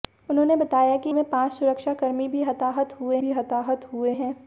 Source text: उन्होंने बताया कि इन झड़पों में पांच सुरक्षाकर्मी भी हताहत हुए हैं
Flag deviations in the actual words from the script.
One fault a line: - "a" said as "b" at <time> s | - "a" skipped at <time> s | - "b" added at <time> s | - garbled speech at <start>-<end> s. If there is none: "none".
- "इन झड़पों" skipped at 1.1 s
- "भी हताहत हुए" added at 3.2 s